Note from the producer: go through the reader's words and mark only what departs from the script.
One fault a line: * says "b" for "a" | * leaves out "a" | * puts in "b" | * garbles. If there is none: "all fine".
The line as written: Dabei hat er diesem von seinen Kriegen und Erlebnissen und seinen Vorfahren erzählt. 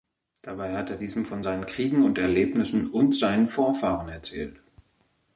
all fine